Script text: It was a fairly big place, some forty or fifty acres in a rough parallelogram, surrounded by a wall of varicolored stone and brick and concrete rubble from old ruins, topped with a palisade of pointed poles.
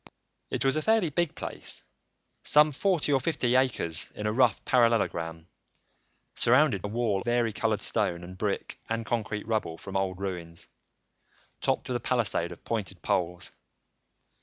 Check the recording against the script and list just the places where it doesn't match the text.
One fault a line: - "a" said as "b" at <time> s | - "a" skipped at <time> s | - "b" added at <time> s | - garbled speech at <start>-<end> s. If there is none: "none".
- "by" skipped at 6.9 s
- "of" skipped at 7.2 s